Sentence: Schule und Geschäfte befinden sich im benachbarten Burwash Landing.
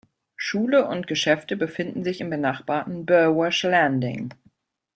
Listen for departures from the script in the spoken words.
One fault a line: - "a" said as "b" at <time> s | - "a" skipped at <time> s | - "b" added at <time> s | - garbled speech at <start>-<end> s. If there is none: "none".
none